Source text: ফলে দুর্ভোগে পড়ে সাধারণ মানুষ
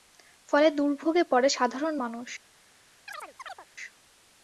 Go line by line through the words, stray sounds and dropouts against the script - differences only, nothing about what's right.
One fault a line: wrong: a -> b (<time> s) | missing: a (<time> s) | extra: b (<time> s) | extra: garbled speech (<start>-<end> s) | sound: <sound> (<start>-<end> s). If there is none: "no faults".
sound: chirp (3.1-3.7 s)